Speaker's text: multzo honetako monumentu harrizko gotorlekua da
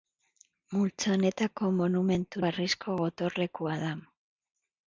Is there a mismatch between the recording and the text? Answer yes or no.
no